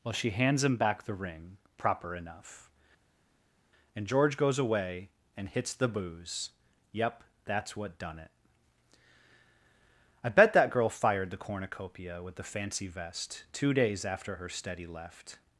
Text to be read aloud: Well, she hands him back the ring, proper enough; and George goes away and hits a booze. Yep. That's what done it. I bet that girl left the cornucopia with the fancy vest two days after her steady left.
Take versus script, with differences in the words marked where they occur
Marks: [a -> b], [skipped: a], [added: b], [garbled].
Well, she hands him back the ring, proper enough; and George goes away and hits [a -> the] booze. Yep. That's what done it. I bet that girl [left -> fired] the cornucopia with the fancy vest two days after her steady left.